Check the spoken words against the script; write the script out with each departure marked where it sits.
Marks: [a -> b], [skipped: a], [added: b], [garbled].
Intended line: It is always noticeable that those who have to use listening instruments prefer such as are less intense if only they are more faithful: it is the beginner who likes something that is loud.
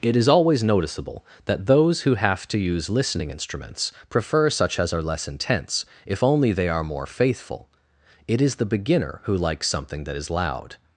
It is always noticeable that those who have to use listening instruments prefer such as are less intense if only they are more faithful: it is the beginner who likes something that is loud.